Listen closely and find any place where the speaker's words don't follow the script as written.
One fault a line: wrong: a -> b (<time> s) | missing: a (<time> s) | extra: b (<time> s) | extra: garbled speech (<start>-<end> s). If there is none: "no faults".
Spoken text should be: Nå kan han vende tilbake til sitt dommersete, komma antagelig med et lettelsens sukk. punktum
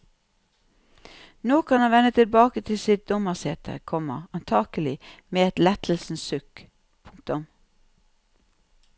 no faults